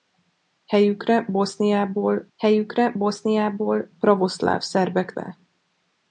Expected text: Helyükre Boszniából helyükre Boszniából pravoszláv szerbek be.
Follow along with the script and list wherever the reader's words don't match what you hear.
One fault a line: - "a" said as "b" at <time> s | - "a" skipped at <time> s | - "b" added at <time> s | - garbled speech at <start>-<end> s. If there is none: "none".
none